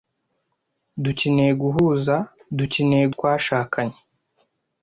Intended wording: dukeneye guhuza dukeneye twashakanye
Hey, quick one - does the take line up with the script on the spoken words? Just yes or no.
yes